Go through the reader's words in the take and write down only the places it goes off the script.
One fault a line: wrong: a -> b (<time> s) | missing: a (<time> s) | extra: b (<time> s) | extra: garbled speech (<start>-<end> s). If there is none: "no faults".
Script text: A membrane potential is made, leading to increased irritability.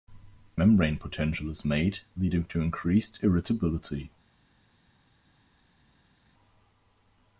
no faults